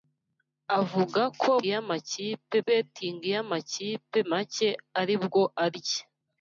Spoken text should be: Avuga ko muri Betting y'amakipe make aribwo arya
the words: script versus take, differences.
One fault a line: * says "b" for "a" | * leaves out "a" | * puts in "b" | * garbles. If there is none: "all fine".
* says "y'amakipe" for "muri"